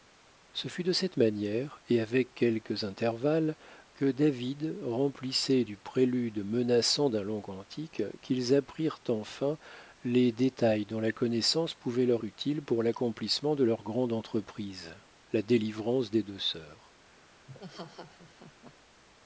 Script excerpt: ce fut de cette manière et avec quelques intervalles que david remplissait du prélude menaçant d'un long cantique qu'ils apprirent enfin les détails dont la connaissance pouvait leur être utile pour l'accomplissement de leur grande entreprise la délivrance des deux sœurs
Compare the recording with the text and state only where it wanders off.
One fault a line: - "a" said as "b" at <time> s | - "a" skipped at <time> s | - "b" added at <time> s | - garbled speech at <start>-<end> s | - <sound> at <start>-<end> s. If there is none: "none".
- "être" skipped at 12.2 s
- laugh at 17.5-18.7 s